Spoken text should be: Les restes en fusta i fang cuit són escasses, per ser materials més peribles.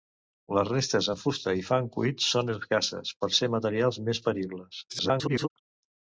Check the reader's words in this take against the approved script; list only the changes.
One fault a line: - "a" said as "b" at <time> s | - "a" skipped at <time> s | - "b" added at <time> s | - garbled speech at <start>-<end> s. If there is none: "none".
- garbled speech at 4.9-5.5 s